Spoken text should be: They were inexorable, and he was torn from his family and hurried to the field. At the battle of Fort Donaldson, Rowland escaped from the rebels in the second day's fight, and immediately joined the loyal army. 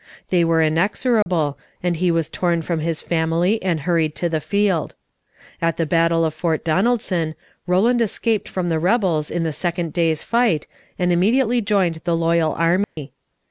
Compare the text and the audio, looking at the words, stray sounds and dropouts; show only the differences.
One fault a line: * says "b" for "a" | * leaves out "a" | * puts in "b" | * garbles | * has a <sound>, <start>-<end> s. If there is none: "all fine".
* has a dropout, 1.2-1.3 s
* has a dropout, 12.8-13.0 s